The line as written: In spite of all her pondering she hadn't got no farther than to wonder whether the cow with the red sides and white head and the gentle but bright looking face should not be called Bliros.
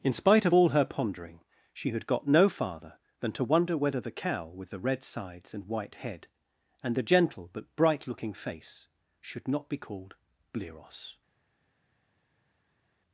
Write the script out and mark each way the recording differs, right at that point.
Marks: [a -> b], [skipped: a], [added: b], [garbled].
In spite of all her pondering she [hadn't -> had] got no farther than to wonder whether the cow with the red sides and white head and the gentle but bright looking face should not be called Bliros.